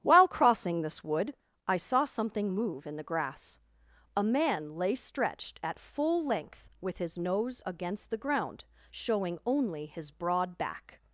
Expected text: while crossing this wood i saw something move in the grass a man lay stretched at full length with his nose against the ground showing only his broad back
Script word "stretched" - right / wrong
right